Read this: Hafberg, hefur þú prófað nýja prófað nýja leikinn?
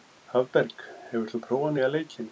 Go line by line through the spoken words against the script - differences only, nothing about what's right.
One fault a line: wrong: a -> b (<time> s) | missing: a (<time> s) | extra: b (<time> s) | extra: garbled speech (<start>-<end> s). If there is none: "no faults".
missing: prófað nýja (1.9 s)